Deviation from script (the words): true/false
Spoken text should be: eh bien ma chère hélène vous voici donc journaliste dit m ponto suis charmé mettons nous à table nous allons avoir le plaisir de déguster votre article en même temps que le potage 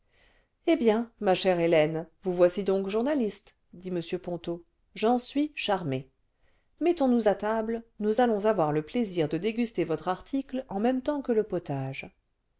true